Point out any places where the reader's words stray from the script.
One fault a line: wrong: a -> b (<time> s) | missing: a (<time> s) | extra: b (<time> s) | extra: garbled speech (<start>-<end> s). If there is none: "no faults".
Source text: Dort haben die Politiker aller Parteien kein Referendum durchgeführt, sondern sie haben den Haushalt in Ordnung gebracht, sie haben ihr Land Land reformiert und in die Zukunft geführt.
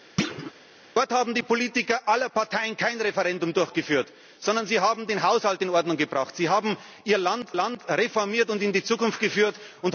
no faults